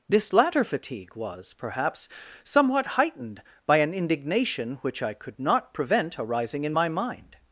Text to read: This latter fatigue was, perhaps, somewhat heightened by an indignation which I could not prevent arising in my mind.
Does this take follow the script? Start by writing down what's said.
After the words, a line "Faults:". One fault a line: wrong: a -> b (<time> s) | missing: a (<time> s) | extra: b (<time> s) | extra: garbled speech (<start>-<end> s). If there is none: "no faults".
This latter fatigue was, perhaps, somewhat heightened by an indignation which I could not prevent arising in my mind.
Faults:
no faults